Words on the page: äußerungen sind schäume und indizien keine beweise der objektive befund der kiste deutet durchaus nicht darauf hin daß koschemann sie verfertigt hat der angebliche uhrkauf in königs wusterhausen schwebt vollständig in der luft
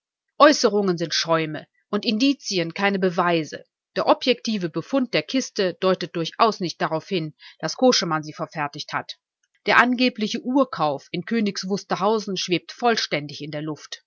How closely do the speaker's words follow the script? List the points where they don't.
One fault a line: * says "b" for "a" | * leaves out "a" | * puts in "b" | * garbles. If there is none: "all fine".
all fine